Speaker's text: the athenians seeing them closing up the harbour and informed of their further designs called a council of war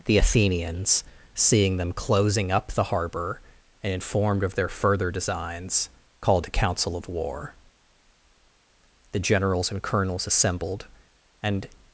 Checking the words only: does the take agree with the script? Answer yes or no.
no